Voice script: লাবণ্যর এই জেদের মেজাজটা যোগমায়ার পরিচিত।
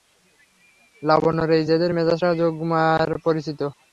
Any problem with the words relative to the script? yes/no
no